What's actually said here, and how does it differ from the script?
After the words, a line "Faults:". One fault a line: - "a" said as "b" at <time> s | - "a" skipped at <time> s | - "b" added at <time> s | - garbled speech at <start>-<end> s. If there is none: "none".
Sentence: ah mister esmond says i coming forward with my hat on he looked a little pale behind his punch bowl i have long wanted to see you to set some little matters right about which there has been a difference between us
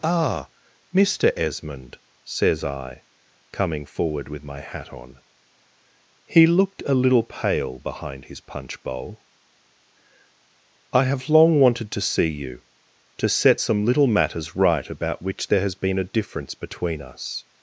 ah mister esmond says i coming forward with my hat on he looked a little pale behind his punch bowl i have long wanted to see you to set some little matters right about which there has been a difference between us
Faults:
none